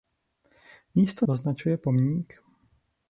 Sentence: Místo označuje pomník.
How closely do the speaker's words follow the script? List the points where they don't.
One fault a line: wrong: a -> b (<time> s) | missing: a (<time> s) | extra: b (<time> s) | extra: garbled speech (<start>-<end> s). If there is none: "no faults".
no faults